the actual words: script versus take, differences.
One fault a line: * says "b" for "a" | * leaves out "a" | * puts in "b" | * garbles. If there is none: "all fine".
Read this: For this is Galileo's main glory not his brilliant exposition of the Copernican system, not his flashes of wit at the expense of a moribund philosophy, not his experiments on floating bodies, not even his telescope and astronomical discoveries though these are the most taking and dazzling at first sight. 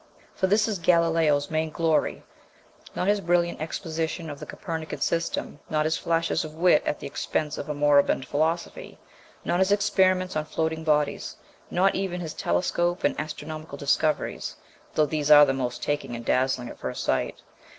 all fine